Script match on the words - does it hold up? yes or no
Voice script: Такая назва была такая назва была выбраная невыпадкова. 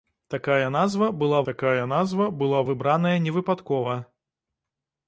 yes